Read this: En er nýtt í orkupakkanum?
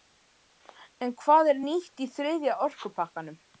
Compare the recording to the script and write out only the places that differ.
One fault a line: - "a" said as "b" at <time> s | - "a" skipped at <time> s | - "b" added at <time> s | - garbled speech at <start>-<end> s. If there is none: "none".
- "hvað" added at 1.2 s
- "þriðja" added at 2.2 s